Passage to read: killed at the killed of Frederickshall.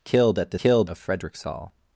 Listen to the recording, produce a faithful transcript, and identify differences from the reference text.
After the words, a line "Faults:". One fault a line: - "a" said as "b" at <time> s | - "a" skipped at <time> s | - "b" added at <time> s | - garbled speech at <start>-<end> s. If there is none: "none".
killed at the killed of Frederickshall.
Faults:
none